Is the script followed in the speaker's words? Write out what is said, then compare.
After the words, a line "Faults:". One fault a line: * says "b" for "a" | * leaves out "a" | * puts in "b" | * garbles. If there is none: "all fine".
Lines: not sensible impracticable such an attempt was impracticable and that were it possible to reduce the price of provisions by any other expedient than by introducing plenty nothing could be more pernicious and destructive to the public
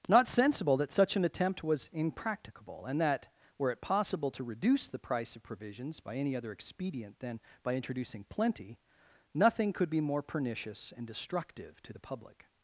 not sensible that such an attempt was impracticable and that were it possible to reduce the price of provisions by any other expedient than by introducing plenty nothing could be more pernicious and destructive to the public
Faults:
* says "that" for "impracticable"